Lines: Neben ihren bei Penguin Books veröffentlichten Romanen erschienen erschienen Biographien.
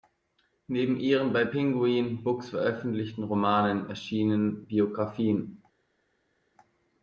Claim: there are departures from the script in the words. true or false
true